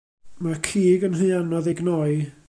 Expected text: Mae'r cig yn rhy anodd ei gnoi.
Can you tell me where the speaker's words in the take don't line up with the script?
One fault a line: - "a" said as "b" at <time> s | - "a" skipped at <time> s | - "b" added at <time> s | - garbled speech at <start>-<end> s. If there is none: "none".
none